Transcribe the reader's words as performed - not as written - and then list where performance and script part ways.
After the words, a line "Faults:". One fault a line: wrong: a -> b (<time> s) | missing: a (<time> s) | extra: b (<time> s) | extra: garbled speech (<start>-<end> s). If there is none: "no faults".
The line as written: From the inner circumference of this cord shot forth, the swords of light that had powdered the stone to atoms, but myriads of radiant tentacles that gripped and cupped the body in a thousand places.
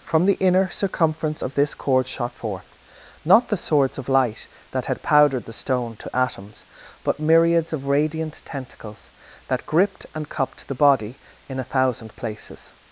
From the inner circumference of this cord shot forth, not the swords of light that had powdered the stone to atoms, but myriads of radiant tentacles that gripped and cupped the body in a thousand places.
Faults:
extra: not (3.3 s)